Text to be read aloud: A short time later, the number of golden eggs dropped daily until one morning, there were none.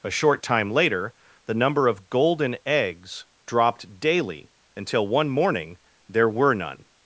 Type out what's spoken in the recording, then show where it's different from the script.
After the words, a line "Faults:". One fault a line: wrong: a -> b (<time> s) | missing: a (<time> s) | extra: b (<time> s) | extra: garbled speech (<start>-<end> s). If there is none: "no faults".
A short time later, the number of golden eggs dropped daily until one morning, there were none.
Faults:
no faults